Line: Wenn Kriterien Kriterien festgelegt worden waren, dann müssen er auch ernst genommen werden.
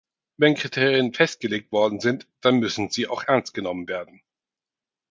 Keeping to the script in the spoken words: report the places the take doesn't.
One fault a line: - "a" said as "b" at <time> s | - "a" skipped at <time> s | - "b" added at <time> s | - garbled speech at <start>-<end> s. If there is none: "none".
- "Kriterien" skipped at 1.1 s
- "waren" said as "sind" at 2.0 s
- "er" said as "sie" at 2.9 s